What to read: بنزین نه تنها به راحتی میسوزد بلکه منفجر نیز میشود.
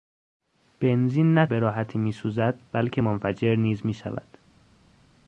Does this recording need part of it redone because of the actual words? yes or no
yes